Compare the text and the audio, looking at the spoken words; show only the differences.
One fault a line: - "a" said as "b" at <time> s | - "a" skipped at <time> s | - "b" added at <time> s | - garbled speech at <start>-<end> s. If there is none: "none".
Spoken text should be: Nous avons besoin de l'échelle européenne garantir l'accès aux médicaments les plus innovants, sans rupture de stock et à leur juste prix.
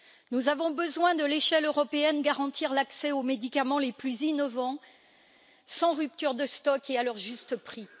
none